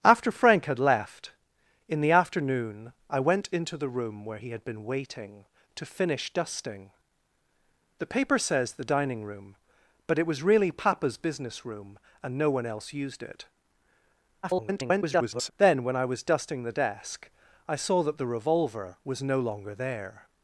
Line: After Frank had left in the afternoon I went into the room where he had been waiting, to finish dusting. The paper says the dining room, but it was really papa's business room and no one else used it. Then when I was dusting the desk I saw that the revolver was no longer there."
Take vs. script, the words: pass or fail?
fail